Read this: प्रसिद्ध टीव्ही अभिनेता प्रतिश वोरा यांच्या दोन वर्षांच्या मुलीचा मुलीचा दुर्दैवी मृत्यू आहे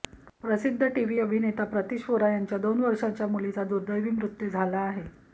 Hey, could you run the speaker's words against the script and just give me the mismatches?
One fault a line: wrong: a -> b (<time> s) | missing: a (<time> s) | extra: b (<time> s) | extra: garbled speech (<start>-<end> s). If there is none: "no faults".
missing: मुलीचा (3.6 s)
extra: झाला (4.5 s)